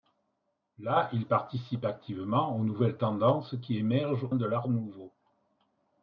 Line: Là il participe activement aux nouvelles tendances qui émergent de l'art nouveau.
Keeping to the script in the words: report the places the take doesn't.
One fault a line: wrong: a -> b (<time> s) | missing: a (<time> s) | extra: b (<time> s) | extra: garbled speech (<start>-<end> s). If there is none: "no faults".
no faults